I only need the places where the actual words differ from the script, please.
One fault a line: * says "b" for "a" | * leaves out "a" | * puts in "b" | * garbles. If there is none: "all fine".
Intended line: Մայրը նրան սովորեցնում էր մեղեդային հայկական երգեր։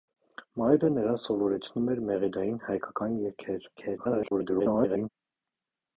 * garbles